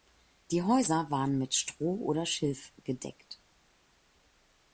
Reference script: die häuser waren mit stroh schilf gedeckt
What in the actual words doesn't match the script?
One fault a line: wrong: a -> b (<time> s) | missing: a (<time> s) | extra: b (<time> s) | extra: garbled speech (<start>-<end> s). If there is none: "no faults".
extra: oder (2.0 s)